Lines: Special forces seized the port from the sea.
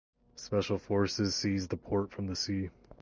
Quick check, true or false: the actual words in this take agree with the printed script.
true